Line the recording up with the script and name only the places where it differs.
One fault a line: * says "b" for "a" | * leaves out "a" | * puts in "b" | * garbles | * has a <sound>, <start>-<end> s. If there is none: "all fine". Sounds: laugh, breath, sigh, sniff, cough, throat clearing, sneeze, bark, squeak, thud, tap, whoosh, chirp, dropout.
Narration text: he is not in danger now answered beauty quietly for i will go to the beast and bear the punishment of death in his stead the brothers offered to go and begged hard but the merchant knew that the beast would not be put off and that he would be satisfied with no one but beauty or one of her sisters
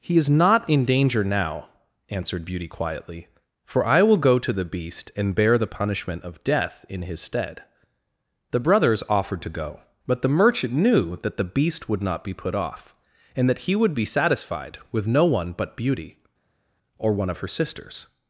* leaves out "and begged hard"